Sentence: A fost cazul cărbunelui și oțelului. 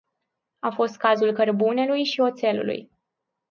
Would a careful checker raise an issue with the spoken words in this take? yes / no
no